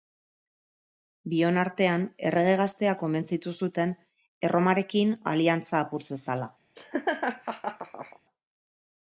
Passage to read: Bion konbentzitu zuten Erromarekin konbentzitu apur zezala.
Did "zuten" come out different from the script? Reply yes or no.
no